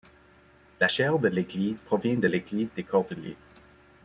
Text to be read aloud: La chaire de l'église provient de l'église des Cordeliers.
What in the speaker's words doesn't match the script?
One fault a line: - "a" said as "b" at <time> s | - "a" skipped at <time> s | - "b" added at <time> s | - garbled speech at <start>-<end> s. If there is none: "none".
none